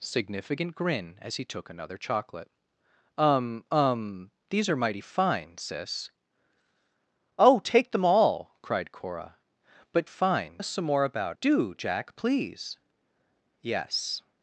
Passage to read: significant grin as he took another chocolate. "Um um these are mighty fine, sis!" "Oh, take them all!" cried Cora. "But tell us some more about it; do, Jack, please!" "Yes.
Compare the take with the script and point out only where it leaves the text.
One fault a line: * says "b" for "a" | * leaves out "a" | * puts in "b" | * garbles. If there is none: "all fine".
* says "fine" for "tell"
* leaves out "it"